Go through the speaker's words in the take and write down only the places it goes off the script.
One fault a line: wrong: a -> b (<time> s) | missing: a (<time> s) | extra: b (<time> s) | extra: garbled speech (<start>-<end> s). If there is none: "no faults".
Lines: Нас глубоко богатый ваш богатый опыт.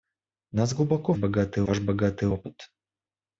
no faults